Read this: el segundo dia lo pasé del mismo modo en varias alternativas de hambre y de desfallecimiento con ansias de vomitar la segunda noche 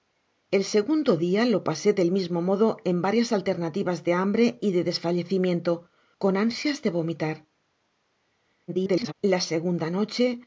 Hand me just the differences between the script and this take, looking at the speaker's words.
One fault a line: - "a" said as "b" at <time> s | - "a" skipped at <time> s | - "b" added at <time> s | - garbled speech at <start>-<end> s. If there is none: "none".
- garbled speech at 8.7-9.1 s